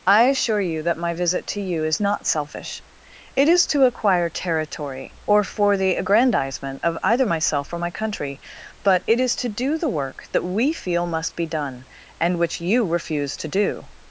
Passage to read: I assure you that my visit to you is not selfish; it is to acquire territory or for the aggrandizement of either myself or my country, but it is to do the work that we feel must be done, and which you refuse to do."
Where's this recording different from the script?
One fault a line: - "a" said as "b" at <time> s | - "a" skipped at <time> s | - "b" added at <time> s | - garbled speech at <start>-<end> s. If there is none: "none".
none